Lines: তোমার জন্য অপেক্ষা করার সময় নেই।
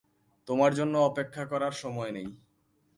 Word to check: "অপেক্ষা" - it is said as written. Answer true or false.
true